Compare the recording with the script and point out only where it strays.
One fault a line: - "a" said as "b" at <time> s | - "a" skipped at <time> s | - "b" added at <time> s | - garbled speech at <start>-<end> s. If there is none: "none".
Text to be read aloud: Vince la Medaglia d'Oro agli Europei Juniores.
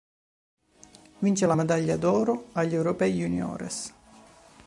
none